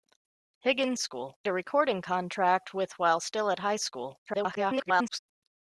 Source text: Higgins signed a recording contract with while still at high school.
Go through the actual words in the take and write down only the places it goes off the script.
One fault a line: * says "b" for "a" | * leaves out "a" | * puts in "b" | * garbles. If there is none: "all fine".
* says "school" for "signed"
* garbles